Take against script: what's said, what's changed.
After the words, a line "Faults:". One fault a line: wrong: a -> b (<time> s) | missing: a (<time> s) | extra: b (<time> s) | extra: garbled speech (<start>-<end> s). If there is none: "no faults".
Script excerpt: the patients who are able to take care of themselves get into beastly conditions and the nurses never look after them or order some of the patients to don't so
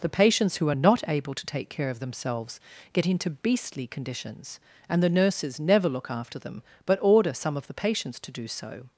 the patients who are not able to take care of themselves get into beastly conditions and the nurses never look after them but order some of the patients to do so
Faults:
extra: not (0.7 s)
wrong: or -> but (6.8 s)
wrong: don't -> do (8.3 s)